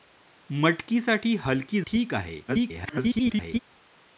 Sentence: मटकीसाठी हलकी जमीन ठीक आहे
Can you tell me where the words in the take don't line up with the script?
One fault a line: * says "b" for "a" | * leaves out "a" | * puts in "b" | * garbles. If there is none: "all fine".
* leaves out "जमीन"
* garbles